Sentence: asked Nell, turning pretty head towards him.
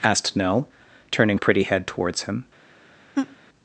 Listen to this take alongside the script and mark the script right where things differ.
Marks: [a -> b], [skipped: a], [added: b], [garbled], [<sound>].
asked Nell, turning pretty head towards him. [laugh]